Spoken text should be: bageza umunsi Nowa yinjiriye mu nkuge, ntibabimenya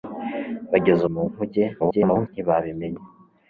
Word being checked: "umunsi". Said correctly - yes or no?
no